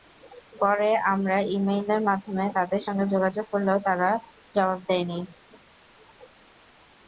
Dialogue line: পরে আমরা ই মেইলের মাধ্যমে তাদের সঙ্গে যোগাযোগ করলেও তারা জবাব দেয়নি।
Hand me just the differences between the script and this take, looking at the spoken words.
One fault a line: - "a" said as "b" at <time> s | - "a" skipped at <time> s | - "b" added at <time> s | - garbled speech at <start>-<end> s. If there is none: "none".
none